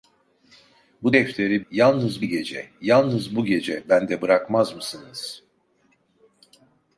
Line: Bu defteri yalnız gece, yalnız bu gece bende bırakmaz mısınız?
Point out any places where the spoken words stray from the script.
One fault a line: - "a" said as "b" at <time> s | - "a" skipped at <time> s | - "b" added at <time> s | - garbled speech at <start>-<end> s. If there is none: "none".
none